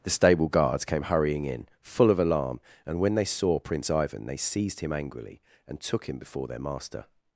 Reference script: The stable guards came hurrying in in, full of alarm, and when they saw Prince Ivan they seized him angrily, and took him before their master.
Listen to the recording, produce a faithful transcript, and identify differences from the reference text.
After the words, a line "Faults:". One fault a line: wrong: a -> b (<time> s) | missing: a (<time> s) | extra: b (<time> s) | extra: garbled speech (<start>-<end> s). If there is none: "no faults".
The stable guards came hurrying in, full of alarm, and when they saw Prince Ivan they seized him angrily, and took him before their master.
Faults:
missing: in (1.7 s)